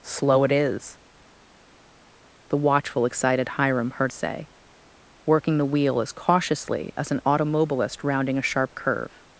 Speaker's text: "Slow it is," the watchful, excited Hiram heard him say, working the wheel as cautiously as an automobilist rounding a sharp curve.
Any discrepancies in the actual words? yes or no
yes